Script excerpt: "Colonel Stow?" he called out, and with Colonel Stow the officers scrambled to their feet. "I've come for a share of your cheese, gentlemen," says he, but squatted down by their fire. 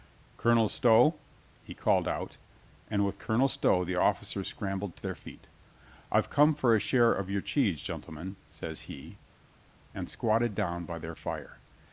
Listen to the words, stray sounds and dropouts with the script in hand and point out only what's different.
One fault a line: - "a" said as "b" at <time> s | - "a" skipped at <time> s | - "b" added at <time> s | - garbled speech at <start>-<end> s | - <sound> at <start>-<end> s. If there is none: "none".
- "but" said as "and" at 9.9 s